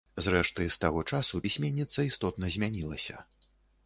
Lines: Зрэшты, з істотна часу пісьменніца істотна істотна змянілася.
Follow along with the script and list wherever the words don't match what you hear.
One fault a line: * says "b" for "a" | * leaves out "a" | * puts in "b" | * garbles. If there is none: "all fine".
* says "таго" for "істотна"
* leaves out "істотна"